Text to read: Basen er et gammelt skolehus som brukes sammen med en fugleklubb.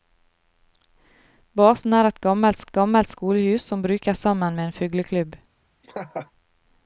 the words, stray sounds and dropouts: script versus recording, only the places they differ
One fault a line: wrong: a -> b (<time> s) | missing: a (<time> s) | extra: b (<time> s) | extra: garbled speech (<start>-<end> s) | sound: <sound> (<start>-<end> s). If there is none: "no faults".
extra: et gammelt (2.6 s)
sound: laugh (5.8-6.3 s)